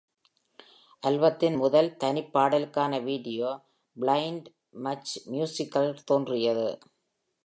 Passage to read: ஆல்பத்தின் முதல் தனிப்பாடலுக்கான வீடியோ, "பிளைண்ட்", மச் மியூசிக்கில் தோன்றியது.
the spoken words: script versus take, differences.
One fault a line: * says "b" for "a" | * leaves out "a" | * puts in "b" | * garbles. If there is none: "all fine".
all fine